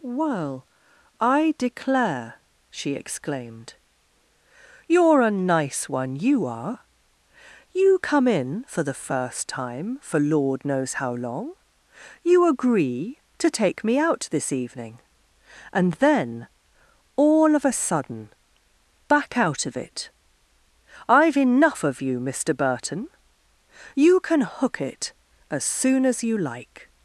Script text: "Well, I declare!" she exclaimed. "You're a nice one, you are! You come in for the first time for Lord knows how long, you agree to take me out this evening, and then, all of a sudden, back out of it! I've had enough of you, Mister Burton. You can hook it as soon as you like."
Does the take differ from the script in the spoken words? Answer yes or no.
yes